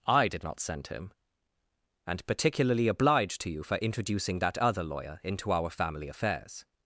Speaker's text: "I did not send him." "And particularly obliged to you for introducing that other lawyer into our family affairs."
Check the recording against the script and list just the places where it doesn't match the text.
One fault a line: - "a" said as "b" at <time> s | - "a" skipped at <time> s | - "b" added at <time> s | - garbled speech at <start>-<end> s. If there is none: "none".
none